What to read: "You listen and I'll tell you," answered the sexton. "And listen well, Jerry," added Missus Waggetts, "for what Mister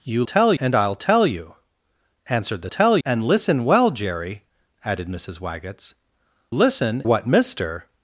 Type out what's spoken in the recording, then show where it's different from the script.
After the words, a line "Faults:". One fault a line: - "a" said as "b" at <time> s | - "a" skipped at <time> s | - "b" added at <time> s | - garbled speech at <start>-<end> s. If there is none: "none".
"You tell and I'll tell you," answered the tell. "And listen well, Jerry," added Missus Waggetts, "listen what Mister
Faults:
- "listen" said as "tell" at 0.2 s
- "sexton" said as "tell" at 2.7 s
- "for" said as "listen" at 6.5 s